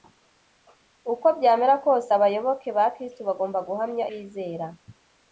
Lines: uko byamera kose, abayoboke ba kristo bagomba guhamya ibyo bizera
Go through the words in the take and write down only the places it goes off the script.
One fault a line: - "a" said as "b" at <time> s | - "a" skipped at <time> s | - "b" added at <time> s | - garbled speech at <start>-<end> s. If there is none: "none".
- "ibyo" skipped at 4.1 s